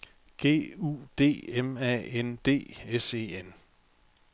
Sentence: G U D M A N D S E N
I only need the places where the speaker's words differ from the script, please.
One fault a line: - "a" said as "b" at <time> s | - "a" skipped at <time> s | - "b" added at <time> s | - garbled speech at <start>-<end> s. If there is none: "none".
none